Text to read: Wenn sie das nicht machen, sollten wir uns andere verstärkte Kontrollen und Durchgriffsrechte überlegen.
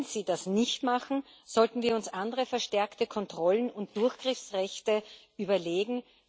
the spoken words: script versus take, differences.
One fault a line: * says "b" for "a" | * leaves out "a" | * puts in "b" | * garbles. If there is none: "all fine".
all fine